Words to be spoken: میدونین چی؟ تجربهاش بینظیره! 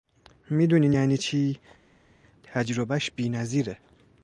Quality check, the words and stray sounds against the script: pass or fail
fail